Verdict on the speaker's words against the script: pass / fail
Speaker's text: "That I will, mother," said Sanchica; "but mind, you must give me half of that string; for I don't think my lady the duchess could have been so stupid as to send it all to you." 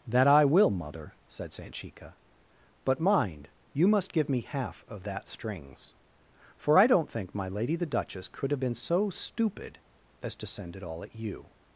fail